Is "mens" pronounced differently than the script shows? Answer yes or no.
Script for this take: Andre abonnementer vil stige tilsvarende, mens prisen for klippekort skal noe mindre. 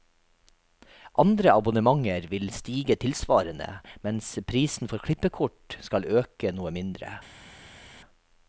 no